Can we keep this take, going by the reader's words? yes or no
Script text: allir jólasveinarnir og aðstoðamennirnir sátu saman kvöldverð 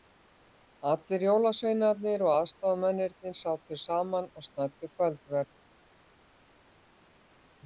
no